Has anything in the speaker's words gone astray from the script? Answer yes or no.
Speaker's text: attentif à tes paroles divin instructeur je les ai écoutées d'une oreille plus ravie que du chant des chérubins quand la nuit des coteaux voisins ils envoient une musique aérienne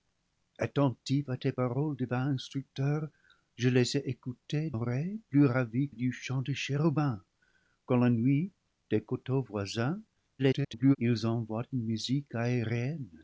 yes